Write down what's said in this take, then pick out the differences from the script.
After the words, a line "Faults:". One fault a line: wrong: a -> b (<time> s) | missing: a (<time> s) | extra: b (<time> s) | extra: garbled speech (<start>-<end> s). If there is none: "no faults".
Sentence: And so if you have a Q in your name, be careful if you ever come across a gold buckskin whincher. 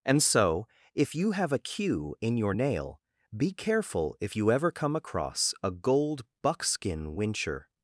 And so if you have a Q in your nail, be careful if you ever come across a gold buckskin whincher.
Faults:
wrong: name -> nail (2.5 s)